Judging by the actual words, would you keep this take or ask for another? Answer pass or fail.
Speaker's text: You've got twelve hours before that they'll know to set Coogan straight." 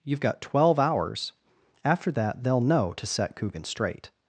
fail